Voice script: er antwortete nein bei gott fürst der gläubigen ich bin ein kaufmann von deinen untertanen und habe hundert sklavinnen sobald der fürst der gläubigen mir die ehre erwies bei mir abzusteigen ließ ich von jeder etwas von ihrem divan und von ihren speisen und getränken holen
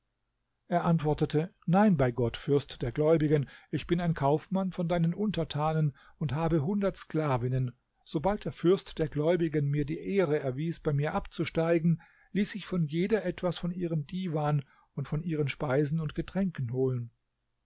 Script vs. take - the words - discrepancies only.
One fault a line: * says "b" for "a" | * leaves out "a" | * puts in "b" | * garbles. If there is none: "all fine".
all fine